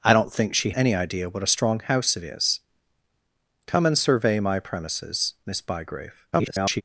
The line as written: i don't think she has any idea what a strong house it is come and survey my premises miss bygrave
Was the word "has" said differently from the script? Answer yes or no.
yes